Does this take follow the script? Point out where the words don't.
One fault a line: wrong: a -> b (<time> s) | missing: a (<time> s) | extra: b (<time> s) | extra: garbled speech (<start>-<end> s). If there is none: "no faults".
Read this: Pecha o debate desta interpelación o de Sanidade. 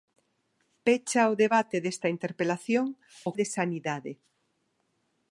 no faults